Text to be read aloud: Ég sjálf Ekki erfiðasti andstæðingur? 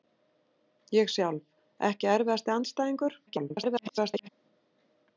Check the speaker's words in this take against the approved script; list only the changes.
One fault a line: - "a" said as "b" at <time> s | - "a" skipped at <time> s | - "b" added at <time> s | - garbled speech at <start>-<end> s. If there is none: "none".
- garbled speech at 3.3-4.3 s